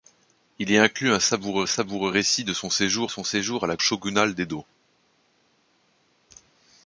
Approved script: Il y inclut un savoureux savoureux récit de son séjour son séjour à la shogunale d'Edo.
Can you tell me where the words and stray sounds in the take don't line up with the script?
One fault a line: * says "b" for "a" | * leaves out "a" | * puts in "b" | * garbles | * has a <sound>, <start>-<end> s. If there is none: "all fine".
all fine